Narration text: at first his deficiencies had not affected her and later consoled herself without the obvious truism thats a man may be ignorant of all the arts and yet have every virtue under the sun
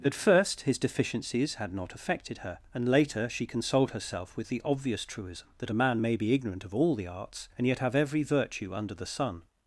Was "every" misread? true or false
false